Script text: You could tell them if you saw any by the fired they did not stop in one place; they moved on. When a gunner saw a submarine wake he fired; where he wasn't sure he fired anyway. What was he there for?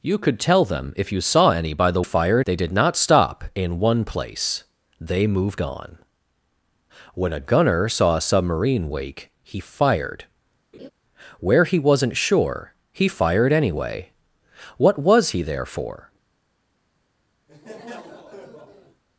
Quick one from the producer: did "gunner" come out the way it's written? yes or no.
yes